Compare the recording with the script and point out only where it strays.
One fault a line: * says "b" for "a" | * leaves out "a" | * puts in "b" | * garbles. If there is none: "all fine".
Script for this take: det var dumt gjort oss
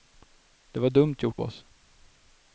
all fine